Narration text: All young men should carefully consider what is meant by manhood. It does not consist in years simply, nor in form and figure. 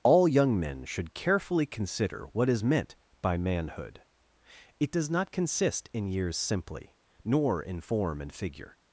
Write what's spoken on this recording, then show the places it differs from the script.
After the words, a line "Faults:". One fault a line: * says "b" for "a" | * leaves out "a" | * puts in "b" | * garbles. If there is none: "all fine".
All young men should carefully consider what is meant by manhood. It does not consist in years simply, nor in form and figure.
Faults:
all fine